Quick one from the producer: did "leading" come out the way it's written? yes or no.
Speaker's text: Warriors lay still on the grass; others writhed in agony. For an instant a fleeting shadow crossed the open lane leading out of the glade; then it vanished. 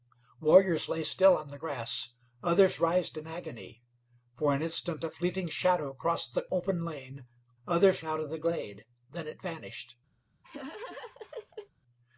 no